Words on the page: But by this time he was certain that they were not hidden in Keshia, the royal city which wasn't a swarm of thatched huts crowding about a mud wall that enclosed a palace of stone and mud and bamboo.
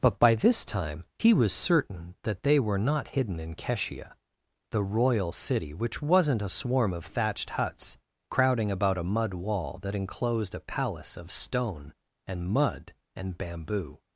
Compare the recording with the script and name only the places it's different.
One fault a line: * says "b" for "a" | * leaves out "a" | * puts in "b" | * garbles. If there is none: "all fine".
all fine